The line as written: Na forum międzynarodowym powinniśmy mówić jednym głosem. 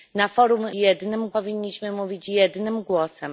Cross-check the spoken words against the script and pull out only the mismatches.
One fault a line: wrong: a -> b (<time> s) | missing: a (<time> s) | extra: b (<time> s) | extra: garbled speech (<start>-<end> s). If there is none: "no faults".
wrong: międzynarodowym -> jednym (0.7 s)